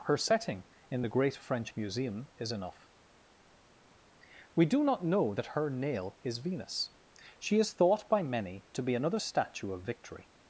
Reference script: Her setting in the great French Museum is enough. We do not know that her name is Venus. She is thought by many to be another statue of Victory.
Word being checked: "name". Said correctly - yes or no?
no